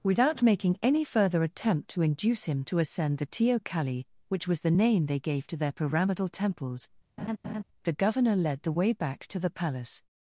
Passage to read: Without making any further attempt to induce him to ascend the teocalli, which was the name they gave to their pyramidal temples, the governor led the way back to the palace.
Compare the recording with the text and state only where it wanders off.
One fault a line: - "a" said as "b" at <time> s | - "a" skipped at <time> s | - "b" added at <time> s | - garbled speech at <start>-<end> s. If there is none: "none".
none